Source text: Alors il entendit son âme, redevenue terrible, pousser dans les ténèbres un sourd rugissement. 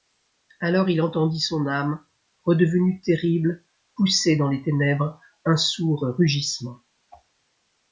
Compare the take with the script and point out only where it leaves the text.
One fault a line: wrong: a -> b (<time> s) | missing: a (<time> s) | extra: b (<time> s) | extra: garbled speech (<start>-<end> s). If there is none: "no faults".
no faults